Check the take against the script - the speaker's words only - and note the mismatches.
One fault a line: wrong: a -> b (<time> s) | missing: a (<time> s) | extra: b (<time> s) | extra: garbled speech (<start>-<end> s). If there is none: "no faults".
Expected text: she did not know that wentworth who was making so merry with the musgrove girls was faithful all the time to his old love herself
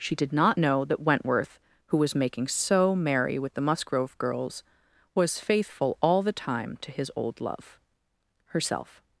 no faults